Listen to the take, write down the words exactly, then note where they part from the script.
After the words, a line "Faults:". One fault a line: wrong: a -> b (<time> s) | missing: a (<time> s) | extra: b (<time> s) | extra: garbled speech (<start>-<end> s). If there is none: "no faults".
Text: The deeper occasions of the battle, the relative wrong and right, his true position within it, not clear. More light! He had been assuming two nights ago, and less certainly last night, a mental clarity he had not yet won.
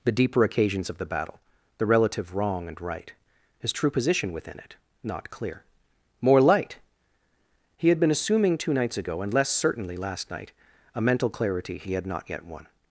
The deeper occasions of the battle, the relative wrong and right, his true position within it, not clear. More light! He had been assuming two nights ago, and less certainly last night, a mental clarity he had not yet won.
Faults:
no faults